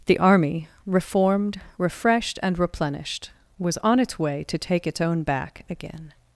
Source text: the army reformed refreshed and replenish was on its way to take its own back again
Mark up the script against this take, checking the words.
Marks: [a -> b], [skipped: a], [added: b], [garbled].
the army reformed refreshed and [replenish -> replenished] was on its way to take its own back again